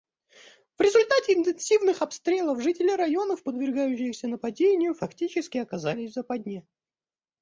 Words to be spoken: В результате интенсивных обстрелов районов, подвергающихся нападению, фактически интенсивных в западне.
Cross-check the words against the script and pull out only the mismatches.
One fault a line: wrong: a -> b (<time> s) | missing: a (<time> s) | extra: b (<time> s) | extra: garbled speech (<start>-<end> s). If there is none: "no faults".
extra: жители (2.6 s)
wrong: интенсивных -> оказались (5.6 s)